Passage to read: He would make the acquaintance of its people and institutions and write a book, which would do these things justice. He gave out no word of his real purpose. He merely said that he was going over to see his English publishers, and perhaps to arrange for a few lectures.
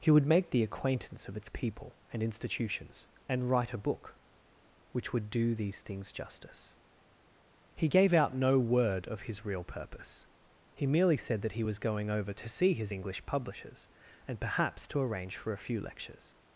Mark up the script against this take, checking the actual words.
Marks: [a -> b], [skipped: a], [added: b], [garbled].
He would make the acquaintance of its people and institutions and write a book, which would do these things justice. He gave out no word of his real purpose. He merely said that he was going over to see his English publishers, and perhaps to arrange for a few lectures.